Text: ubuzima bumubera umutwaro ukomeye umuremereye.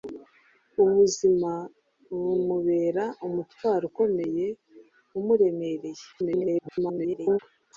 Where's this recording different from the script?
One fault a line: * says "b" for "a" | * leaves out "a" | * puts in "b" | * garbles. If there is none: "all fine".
* garbles